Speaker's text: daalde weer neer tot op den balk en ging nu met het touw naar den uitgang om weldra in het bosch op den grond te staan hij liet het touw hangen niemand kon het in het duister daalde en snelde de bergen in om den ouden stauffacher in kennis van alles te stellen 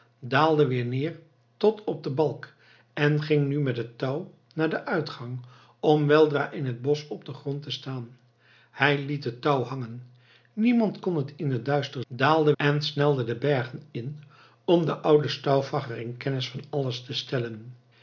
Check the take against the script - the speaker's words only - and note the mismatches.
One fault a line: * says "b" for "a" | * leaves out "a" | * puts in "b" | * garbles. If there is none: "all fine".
all fine